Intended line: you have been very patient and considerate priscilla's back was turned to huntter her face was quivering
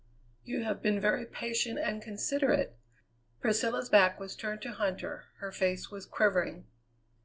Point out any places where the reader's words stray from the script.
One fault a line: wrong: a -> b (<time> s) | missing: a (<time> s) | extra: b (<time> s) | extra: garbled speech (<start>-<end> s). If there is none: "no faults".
no faults